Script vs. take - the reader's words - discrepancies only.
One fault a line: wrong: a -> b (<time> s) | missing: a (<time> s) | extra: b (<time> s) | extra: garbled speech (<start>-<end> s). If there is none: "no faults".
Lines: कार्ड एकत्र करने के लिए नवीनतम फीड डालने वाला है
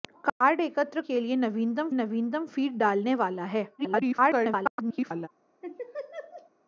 missing: करने (1.0 s)
extra: नवीनतम (1.9 s)
extra: garbled speech (3.8-5.3 s)